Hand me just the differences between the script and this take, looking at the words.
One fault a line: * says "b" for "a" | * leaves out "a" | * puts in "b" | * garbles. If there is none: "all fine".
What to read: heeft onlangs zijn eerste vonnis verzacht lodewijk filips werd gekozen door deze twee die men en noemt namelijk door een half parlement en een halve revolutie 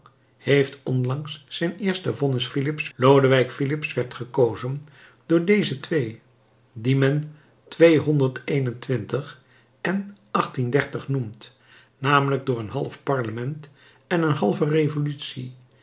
* says "filips" for "verzacht"